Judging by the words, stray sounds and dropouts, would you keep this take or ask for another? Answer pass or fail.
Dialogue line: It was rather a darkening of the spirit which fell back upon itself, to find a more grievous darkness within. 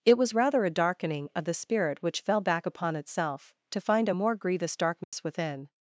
fail